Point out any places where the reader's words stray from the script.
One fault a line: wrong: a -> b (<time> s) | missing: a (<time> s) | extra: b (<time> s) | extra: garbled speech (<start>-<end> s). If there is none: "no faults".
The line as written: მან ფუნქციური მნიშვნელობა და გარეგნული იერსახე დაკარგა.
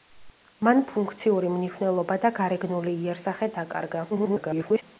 extra: garbled speech (4.1-4.8 s)